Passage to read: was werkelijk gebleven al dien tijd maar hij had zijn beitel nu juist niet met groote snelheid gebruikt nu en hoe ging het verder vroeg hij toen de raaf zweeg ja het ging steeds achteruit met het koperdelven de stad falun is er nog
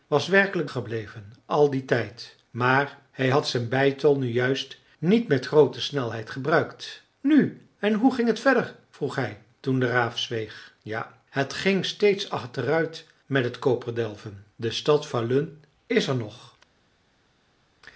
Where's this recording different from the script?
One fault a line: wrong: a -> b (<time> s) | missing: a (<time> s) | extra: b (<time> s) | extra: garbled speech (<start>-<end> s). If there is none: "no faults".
no faults